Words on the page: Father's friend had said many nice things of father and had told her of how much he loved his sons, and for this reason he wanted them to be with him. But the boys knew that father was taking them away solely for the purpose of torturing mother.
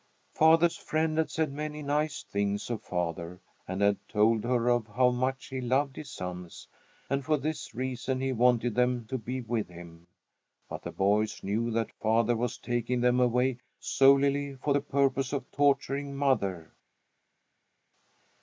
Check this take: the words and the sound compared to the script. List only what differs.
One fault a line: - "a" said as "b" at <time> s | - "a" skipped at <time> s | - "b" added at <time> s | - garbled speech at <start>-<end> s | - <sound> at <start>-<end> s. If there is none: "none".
none